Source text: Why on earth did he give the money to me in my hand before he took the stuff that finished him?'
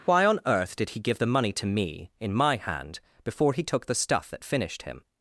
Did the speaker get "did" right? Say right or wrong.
right